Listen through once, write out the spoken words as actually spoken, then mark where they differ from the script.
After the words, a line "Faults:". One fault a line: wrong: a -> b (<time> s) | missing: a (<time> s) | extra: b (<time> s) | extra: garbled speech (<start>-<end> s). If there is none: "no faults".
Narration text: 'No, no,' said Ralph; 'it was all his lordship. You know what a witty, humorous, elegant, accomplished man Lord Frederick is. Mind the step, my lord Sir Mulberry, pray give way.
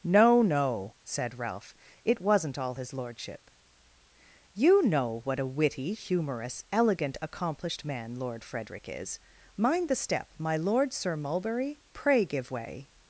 'No, no,' said Ralph; 'it wasn't all his lordship. You know what a witty, humorous, elegant, accomplished man Lord Frederick is. Mind the step, my lord Sir Mulberry, pray give way.
Faults:
wrong: was -> wasn't (2.2 s)